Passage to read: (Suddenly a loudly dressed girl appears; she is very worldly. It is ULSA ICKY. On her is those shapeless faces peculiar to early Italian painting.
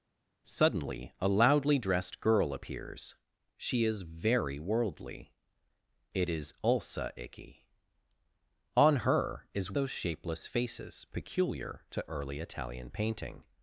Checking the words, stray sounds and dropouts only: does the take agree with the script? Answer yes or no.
yes